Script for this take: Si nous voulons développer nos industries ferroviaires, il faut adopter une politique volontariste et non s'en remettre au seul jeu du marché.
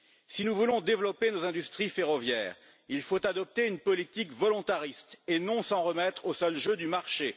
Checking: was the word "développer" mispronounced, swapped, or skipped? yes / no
no